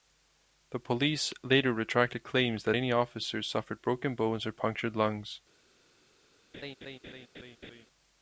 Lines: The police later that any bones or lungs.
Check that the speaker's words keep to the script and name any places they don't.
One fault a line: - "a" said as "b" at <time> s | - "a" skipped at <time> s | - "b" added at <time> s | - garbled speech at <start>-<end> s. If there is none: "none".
- "retracted claims" added at 1.7 s
- "officers suffered broken" added at 2.9 s
- "punctured" added at 4.5 s